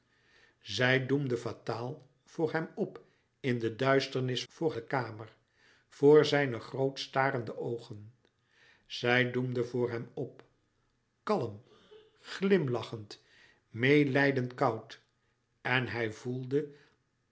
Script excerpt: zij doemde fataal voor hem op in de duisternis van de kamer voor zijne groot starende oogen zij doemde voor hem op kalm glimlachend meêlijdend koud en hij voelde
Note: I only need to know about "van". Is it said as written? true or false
false